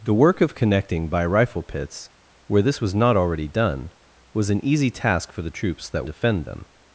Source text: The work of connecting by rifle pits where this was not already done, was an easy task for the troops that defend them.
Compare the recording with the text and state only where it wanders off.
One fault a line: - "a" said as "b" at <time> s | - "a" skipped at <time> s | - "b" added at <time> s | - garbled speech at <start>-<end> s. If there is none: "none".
none